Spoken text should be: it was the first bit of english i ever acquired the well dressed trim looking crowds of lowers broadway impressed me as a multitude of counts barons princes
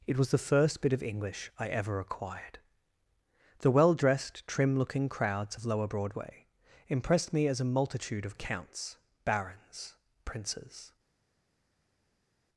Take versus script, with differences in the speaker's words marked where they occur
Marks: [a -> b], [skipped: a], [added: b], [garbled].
it was the first bit of english i ever acquired the well dressed trim looking crowds of [lowers -> lower] broadway impressed me as a multitude of counts barons princes